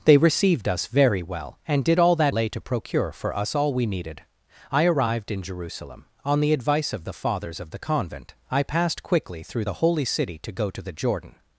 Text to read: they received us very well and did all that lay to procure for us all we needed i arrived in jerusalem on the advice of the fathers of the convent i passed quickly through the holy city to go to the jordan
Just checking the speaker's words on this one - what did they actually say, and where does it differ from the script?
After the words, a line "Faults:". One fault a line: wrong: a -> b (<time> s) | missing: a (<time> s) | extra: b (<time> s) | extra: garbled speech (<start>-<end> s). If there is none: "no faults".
they received us very well and did all that lay to procure for us all we needed i arrived in jerusalem on the advice of the fathers of the convent i passed quickly through the holy city to go to the jordan
Faults:
no faults